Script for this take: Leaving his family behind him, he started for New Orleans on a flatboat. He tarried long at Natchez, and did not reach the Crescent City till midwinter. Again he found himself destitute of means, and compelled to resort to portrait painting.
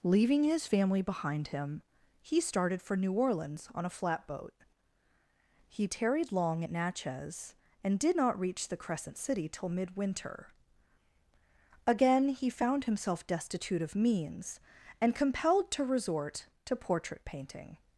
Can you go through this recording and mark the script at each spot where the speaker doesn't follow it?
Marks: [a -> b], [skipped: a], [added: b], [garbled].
Leaving his family behind him, he started for New Orleans on a flatboat. He tarried long at Natchez, and did not reach the Crescent City till midwinter. Again he found himself destitute of means, and compelled to resort to portrait painting.